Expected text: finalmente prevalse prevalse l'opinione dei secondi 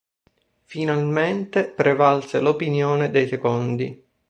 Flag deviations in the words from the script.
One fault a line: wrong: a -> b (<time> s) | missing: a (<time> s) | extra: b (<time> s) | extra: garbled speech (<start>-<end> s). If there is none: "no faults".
missing: prevalse (2.4 s)